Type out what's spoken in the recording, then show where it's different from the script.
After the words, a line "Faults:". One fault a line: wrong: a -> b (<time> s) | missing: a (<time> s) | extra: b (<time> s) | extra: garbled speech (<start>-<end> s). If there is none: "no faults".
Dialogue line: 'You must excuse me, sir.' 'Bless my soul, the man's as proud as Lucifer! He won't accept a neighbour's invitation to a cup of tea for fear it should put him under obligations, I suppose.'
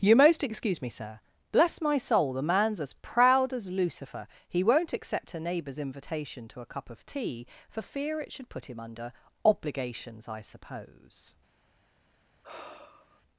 'You most excuse me, sir.' 'Bless my soul, the man's as proud as Lucifer! He won't accept a neighbour's invitation to a cup of tea for fear it should put him under obligations, I suppose.'
Faults:
wrong: must -> most (0.1 s)